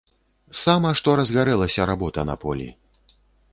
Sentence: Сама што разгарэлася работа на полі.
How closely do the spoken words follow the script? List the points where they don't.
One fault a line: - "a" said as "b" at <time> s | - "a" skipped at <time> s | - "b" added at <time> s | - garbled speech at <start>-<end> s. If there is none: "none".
none